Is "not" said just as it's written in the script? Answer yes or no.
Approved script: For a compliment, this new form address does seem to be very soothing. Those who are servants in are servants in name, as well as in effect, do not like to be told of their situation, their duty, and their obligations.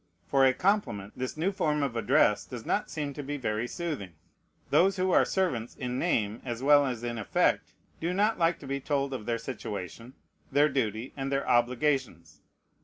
yes